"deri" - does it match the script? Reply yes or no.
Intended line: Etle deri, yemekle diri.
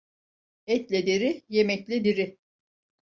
yes